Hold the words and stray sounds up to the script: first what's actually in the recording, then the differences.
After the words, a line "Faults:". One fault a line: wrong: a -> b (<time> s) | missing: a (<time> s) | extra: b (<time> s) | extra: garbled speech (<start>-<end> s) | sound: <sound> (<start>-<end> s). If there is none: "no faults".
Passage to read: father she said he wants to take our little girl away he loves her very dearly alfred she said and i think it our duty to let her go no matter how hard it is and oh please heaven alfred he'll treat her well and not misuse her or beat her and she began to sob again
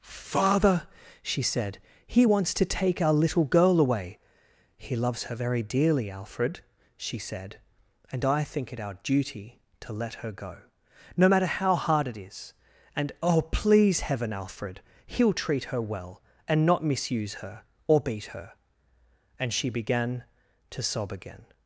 father she said he wants to take our little girl away he loves her very dearly alfred she said and i think it our duty to let her go no matter how hard it is and oh please heaven alfred he'll treat her well and not misuse her or beat her and she began to sob again
Faults:
no faults